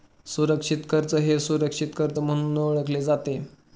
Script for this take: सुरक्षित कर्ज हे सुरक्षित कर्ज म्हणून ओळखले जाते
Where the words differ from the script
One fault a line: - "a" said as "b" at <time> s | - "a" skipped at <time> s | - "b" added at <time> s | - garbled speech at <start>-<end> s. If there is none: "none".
none